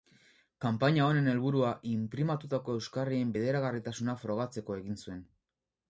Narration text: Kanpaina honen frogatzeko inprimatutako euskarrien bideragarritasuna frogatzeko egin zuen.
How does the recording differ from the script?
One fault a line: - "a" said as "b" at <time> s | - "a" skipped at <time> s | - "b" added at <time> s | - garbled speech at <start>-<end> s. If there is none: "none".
- "frogatzeko" said as "helburua" at 1.3 s